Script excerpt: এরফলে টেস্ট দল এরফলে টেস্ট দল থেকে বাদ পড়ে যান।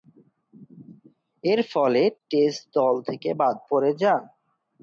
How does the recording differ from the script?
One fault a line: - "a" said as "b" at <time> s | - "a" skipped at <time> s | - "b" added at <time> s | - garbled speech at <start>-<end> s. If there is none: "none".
- "এরফলে টেস্ট দল" skipped at 2.9 s